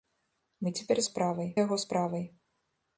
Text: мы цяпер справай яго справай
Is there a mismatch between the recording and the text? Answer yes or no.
no